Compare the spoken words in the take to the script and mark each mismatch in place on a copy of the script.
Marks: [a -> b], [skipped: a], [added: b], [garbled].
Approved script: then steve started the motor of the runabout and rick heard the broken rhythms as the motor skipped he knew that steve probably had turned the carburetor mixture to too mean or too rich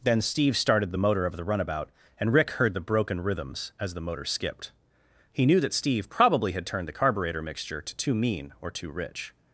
then steve started the motor of the runabout and rick heard the broken rhythms as the motor skipped he knew that steve probably had turned the carburetor mixture to too mean or too rich